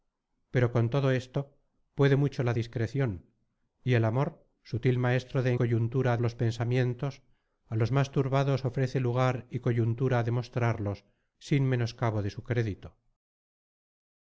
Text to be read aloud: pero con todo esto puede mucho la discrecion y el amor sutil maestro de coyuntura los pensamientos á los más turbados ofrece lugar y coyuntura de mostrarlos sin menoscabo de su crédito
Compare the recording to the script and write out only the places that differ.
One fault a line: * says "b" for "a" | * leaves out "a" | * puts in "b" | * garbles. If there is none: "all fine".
all fine